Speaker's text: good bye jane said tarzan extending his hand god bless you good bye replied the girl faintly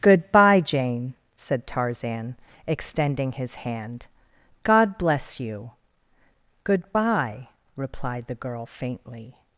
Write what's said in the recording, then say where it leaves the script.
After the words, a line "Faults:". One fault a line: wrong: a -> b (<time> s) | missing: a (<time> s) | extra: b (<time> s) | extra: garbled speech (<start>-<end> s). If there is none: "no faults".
good bye jane said tarzan extending his hand god bless you good bye replied the girl faintly
Faults:
no faults